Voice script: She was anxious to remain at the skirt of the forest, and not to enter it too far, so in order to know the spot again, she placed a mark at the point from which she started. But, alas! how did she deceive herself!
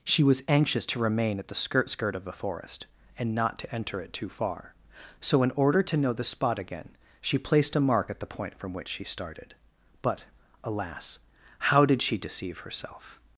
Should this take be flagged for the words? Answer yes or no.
yes